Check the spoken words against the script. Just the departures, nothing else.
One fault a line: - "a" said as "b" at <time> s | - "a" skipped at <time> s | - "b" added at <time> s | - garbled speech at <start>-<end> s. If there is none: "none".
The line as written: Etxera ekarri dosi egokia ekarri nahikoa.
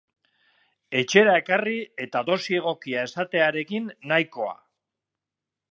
- "eta" added at 2.1 s
- "ekarri" said as "esatearekin" at 3.1 s